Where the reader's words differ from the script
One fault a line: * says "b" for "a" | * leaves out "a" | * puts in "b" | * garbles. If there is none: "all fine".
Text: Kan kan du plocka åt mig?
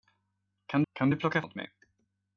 all fine